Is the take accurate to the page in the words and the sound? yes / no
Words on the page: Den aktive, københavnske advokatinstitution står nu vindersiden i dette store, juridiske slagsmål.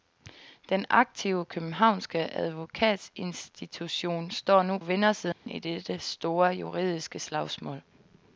no